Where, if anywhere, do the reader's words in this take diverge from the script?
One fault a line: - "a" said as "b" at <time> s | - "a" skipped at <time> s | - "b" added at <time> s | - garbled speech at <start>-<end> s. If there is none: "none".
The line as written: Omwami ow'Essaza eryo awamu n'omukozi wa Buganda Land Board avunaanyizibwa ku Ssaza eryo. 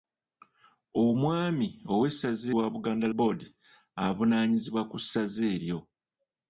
- "eryo awamu n'omukozi" skipped at 2.5 s
- "Land" skipped at 3.1 s